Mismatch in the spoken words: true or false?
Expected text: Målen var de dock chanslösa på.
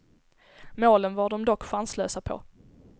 false